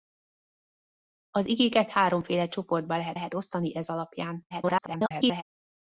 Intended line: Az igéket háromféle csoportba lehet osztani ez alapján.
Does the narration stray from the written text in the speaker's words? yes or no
yes